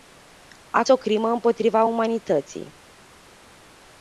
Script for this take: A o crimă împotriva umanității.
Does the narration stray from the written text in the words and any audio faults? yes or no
no